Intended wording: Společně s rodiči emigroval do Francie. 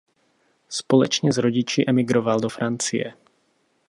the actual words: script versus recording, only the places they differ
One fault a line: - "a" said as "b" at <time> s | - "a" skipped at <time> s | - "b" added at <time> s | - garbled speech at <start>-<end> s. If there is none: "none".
none